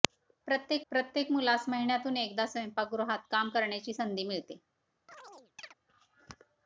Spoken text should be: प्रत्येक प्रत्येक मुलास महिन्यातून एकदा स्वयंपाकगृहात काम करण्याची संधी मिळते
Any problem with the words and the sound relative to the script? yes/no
yes